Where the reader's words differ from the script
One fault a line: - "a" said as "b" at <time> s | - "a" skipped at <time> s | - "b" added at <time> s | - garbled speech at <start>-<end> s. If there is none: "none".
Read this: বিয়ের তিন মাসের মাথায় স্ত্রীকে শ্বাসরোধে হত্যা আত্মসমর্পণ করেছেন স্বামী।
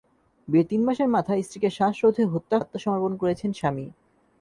none